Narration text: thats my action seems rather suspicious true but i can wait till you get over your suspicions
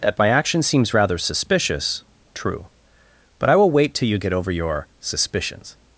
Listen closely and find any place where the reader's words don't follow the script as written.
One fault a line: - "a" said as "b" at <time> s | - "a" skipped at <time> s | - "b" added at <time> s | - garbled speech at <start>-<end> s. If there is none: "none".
- "thats" said as "that" at 0.0 s
- "can" said as "will" at 3.6 s